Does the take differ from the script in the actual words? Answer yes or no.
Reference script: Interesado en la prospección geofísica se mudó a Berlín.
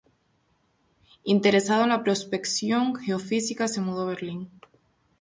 no